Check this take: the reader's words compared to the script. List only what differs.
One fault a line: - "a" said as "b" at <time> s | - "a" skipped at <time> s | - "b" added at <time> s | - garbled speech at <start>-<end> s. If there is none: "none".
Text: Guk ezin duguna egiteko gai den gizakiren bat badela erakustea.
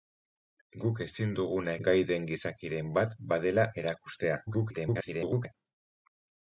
- "egiteko" skipped at 1.8 s
- garbled speech at 4.5-5.5 s